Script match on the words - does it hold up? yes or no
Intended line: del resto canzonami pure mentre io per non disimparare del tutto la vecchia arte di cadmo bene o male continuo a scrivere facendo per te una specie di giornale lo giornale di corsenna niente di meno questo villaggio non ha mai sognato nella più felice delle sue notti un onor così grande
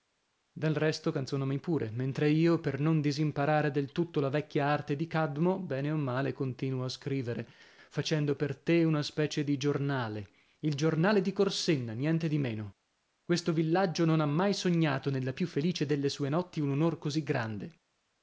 no